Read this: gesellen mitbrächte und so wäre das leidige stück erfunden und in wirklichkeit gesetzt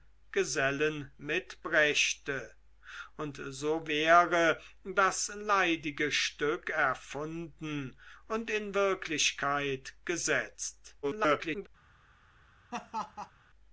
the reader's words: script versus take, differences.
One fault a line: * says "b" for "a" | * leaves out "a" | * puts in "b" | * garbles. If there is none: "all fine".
* garbles